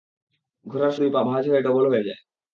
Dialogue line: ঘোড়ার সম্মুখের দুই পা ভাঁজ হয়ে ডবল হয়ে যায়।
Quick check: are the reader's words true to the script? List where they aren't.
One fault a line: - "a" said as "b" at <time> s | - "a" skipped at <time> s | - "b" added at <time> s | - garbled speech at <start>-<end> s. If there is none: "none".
- "সম্মুখের" skipped at 0.9 s